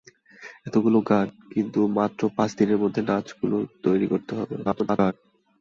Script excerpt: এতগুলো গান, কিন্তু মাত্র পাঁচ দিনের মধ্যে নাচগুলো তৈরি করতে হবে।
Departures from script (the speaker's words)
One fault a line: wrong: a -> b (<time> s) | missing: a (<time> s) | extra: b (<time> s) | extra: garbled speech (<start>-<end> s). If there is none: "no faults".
extra: garbled speech (4.6-5.1 s)